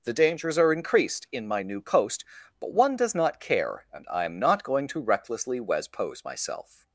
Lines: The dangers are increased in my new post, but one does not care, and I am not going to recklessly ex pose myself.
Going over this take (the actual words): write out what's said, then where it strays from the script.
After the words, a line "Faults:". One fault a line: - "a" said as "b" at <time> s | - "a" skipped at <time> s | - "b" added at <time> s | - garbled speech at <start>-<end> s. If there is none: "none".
The dangers are increased in my new post, but one does not care, and I am not going to recklessly wes pose myself.
Faults:
- "ex" said as "wes" at 5.6 s